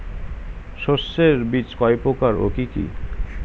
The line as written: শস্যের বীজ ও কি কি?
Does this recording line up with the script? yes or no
no